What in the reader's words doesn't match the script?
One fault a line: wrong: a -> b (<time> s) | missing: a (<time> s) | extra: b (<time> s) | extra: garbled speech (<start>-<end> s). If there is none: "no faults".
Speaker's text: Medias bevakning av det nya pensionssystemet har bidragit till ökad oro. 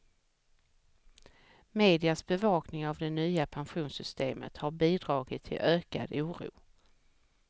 no faults